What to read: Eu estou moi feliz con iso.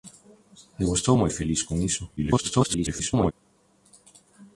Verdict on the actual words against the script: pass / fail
fail